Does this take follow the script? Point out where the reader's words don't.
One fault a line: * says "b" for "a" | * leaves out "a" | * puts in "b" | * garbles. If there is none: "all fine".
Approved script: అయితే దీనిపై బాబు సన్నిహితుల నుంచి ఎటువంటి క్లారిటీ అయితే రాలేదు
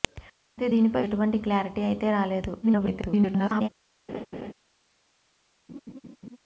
* leaves out "బాబు సన్నిహితుల నుంచి"
* garbles